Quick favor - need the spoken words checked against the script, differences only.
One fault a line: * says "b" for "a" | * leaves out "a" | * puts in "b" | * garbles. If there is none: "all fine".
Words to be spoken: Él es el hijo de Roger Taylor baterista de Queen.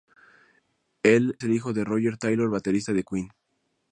* leaves out "es"